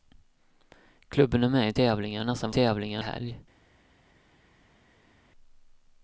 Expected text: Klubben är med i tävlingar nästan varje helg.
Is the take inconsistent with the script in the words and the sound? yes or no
yes